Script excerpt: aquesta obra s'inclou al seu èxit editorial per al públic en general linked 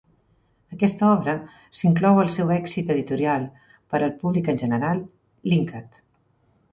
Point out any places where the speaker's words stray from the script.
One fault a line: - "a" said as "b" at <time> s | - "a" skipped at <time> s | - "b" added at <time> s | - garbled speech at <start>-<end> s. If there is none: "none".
none